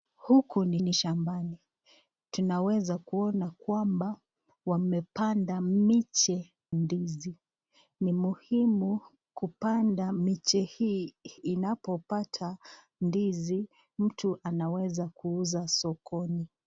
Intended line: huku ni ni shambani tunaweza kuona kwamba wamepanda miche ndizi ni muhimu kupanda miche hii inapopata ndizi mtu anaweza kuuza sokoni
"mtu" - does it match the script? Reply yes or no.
yes